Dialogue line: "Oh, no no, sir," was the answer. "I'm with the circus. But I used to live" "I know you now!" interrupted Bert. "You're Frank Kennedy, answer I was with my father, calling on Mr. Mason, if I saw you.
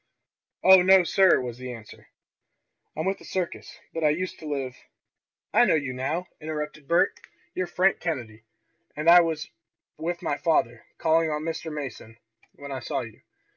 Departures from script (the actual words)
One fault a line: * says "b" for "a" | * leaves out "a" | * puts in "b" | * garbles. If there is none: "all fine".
* leaves out "no"
* says "and" for "answer"
* says "when" for "if"